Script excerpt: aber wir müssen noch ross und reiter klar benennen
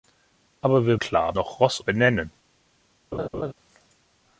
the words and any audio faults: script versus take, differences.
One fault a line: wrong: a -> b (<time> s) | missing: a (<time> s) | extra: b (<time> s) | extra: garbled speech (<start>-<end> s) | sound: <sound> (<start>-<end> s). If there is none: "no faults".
wrong: müssen -> klar (0.9 s)
missing: und reiter klar (1.8 s)
sound: laugh (3.1-3.5 s)